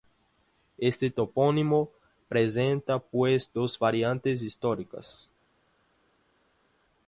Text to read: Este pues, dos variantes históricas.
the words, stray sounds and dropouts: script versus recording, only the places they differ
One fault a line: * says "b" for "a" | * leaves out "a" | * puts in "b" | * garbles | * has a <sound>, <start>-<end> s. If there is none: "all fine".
* puts in "topónimo presenta"